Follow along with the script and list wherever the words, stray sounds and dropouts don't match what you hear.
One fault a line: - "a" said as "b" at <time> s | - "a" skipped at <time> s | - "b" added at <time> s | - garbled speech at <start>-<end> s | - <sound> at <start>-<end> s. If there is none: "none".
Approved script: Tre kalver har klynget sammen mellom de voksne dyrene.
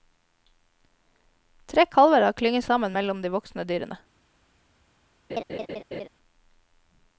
- laugh at 5.3-6.1 s